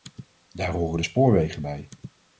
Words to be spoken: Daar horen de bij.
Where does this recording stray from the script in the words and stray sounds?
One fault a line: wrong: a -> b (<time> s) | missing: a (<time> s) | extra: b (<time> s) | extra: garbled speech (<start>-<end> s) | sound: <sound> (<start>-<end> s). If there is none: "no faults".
extra: spoorwegen (1.0 s)